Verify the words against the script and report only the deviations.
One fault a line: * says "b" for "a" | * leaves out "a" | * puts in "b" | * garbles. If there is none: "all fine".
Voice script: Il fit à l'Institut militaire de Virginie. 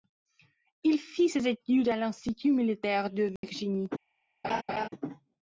* puts in "ses études"